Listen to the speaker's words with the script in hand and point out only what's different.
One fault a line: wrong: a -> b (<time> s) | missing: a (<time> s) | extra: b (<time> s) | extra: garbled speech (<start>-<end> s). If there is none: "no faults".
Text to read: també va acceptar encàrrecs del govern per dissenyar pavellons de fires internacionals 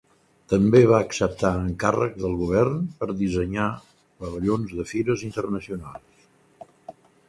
no faults